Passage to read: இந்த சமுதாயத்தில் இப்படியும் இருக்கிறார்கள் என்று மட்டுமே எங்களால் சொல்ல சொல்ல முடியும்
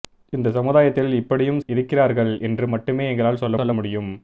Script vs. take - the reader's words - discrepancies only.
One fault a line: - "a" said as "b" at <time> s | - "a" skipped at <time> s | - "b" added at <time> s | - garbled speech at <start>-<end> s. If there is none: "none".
none